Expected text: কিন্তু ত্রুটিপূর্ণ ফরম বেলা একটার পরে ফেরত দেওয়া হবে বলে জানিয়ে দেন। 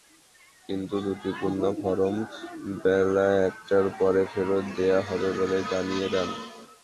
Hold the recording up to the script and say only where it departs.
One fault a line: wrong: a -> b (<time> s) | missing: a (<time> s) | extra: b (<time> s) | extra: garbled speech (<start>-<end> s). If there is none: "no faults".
no faults